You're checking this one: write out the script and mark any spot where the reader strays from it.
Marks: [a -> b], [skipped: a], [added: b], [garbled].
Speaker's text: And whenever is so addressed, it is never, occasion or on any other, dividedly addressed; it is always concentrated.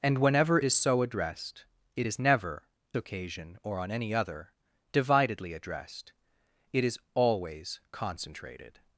And whenever is so addressed, it is never, occasion or on any other, dividedly addressed; it is always concentrated.